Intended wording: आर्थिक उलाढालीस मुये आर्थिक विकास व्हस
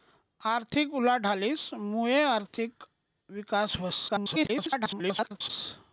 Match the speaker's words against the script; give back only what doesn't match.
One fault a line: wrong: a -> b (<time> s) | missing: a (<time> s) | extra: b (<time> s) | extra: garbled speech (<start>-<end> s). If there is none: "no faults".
extra: garbled speech (4.1-5.5 s)